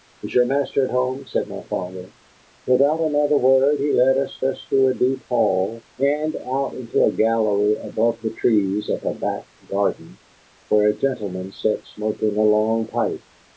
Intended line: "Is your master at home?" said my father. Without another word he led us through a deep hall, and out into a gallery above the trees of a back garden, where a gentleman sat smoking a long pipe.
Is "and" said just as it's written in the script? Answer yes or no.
yes